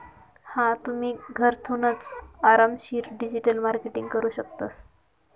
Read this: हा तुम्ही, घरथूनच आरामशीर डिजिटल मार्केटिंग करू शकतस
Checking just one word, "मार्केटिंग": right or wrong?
right